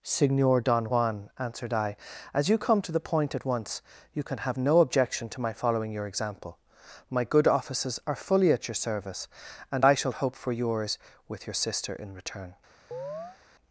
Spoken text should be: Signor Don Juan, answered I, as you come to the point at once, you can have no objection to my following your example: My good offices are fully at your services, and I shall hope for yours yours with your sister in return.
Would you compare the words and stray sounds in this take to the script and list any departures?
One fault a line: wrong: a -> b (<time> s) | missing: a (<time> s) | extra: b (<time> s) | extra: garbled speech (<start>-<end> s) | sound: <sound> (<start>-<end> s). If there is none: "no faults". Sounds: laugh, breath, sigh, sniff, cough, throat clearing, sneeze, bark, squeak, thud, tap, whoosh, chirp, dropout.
wrong: services -> service (8.7 s)
missing: yours (11.0 s)
sound: chirp (12.9-13.4 s)